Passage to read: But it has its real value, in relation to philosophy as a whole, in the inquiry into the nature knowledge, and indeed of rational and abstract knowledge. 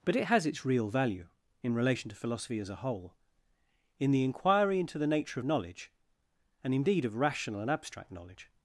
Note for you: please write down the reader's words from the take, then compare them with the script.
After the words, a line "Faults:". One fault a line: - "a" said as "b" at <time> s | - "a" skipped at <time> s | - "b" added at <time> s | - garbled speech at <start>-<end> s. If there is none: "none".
But it has its real value, in relation to philosophy as a whole, in the inquiry into the nature knowledge, and indeed of rational and abstract knowledge.
Faults:
none